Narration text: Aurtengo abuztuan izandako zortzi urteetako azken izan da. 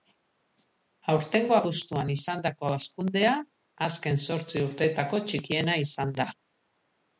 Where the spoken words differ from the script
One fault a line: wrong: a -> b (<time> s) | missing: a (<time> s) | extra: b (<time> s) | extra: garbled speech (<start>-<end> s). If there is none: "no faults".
extra: hazkundea azken (2.8 s)
wrong: azken -> txikiena (5.3 s)